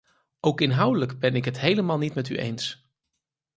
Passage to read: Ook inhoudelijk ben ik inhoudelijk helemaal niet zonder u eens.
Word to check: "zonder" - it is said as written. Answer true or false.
false